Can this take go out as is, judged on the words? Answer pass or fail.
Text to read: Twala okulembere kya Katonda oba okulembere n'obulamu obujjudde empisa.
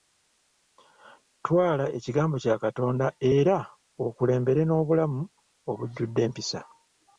fail